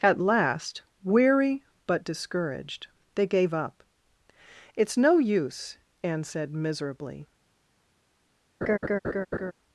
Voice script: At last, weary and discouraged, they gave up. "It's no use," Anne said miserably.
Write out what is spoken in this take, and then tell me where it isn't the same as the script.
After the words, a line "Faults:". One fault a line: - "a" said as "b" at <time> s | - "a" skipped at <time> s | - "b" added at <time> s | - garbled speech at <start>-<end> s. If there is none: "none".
At last, weary but discouraged, they gave up. "It's no use," Anne said miserably.
Faults:
- "and" said as "but" at 1.9 s